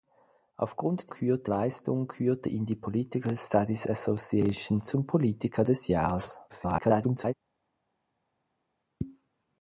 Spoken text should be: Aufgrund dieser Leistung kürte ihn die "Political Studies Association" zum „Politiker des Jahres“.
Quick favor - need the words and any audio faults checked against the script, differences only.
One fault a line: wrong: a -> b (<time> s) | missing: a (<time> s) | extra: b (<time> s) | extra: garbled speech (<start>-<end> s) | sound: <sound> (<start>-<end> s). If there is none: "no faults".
wrong: dieser -> kürte (1.1 s)
extra: garbled speech (6.5-7.3 s)